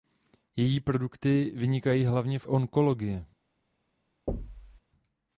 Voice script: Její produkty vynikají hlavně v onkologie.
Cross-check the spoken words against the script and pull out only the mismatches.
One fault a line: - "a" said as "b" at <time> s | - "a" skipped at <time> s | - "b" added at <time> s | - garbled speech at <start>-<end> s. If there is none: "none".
none